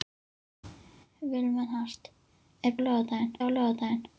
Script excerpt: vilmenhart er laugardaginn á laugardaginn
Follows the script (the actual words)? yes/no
yes